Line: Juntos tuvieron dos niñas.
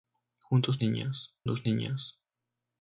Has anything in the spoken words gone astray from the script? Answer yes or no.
yes